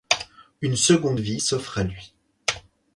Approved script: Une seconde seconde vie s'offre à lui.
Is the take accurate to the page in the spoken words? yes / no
no